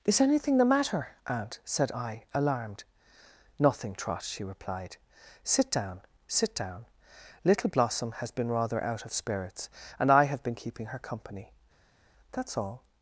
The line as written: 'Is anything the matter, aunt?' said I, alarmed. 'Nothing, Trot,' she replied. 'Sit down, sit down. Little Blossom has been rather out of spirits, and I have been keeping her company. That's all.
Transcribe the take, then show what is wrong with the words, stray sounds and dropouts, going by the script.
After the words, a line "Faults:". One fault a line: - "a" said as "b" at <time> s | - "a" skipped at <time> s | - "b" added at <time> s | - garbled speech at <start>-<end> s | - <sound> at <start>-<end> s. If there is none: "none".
'Is anything the matter, aunt?' said I, alarmed. 'Nothing, Trot,' she replied. 'Sit down, sit down. Little Blossom has been rather out of spirits, and I have been keeping her company. That's all.
Faults:
none